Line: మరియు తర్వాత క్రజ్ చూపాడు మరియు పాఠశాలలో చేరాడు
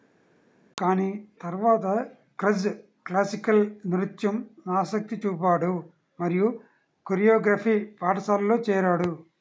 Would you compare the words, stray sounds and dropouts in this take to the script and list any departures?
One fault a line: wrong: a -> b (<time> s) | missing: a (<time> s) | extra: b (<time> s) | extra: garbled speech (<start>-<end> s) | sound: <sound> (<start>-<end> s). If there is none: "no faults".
wrong: మరియు -> కానీ (0.8 s)
extra: క్లాసికల్ నృత్యం ఆసక్తి (3.1 s)
extra: కొరియోగ్రఫీ (7.1 s)